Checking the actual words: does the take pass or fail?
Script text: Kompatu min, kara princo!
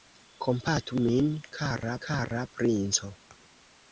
fail